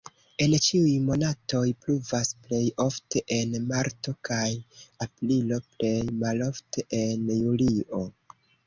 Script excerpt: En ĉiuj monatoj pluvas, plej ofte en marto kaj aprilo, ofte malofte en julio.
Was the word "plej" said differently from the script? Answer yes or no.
no